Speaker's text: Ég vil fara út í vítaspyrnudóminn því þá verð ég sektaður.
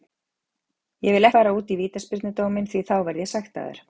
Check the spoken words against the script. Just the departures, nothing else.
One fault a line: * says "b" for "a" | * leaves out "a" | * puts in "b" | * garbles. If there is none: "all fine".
all fine